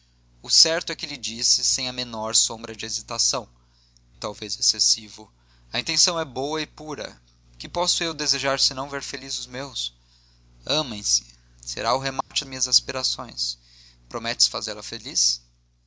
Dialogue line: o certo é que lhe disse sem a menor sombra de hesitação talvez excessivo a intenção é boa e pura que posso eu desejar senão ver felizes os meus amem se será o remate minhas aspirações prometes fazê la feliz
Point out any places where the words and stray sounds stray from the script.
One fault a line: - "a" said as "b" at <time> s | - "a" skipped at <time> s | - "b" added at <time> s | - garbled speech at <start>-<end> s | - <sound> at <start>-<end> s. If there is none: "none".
- dropout at 12.2-12.3 s